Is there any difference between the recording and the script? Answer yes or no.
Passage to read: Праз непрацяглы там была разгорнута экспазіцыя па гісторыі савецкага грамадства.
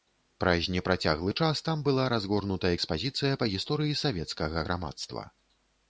yes